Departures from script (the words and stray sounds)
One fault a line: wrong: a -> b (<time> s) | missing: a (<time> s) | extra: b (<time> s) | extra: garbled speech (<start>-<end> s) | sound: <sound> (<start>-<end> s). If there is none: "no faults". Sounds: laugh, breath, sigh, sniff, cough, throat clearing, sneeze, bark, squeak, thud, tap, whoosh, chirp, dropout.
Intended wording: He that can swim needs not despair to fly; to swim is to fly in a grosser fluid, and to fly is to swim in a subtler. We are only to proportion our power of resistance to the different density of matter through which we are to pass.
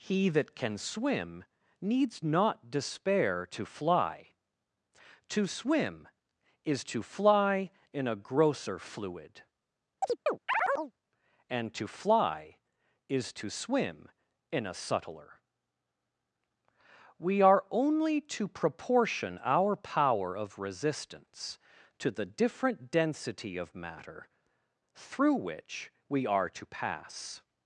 sound: chirp (10.0-10.9 s)